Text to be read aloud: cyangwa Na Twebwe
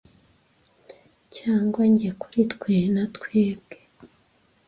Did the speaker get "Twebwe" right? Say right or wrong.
right